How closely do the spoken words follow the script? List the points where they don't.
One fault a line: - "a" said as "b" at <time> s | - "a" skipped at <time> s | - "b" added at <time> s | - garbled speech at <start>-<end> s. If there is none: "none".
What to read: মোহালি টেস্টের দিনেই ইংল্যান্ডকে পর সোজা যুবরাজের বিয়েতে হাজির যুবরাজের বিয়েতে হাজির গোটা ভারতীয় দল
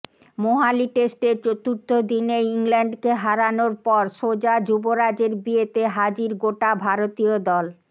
- "চতুর্থ" added at 1.4 s
- "হারানোর" added at 3.2 s
- "যুবরাজের বিয়েতে হাজির" skipped at 6.3 s